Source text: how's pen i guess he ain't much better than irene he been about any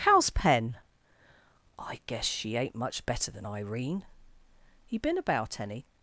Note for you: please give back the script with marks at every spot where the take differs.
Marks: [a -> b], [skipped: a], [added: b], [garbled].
how's pen i guess [he -> she] ain't much better than irene he been about any